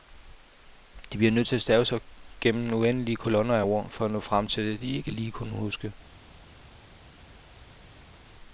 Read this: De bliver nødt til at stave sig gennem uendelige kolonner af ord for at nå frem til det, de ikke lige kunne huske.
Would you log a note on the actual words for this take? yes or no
no